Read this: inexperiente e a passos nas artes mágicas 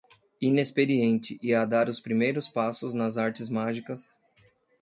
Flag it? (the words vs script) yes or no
yes